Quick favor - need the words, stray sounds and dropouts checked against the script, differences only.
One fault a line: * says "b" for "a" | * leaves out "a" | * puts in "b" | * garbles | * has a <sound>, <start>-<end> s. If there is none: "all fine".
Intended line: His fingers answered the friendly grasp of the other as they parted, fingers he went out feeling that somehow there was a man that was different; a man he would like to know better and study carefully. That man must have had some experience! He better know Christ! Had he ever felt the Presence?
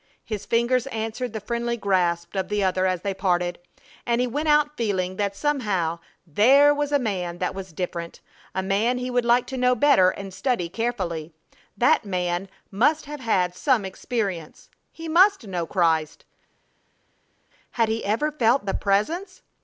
* says "and" for "fingers"
* says "must" for "better"